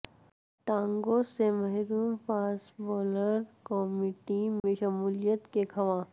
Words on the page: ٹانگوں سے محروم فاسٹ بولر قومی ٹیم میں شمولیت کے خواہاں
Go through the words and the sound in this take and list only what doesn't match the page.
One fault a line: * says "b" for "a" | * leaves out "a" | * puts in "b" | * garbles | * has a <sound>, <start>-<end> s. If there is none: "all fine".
* has a dropout, 4.6-4.6 s